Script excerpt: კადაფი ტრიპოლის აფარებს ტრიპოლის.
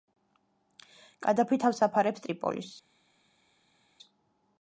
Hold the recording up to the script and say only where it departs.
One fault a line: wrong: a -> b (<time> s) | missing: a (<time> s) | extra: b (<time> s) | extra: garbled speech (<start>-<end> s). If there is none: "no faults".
wrong: ტრიპოლის -> თავს (1.6 s)